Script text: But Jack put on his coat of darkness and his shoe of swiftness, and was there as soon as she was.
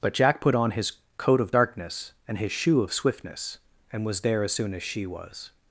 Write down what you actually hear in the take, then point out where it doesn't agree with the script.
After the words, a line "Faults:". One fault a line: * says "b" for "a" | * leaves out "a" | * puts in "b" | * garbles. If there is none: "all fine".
But Jack put on his coat of darkness and his shoe of swiftness, and was there as soon as she was.
Faults:
all fine